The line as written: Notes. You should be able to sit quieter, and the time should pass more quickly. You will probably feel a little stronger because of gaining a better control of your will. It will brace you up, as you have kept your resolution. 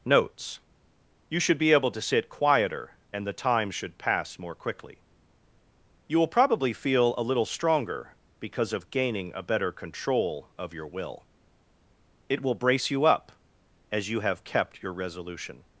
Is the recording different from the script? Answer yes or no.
no